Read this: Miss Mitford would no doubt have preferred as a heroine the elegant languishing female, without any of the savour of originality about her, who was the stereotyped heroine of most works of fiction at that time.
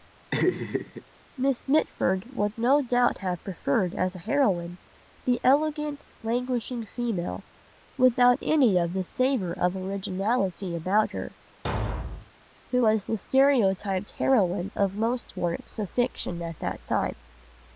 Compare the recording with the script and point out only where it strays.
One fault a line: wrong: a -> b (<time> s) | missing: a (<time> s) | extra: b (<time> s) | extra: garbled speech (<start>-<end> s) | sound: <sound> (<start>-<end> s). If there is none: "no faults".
sound: laugh (0.3-1.0 s)
sound: thud (11.6-12.3 s)